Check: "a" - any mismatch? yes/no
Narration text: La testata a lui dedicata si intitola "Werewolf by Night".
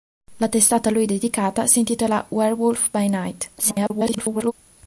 no